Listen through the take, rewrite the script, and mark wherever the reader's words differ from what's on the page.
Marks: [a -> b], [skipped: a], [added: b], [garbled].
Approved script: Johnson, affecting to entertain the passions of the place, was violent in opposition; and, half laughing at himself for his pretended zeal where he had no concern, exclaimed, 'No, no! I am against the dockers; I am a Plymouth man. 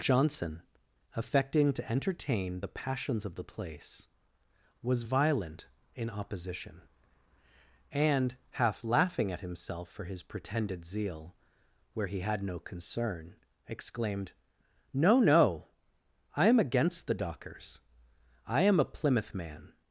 Johnson, affecting to entertain the passions of the place, was violent in opposition; and, half laughing at himself for his pretended zeal where he had no concern, exclaimed, 'No, no! I am against the dockers; I am a Plymouth man.